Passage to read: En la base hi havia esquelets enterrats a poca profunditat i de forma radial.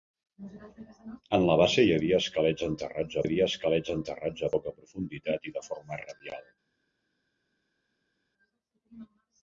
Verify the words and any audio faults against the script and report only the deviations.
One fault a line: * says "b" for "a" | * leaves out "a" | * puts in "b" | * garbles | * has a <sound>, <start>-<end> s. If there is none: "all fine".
* puts in "havia esquelets enterrats"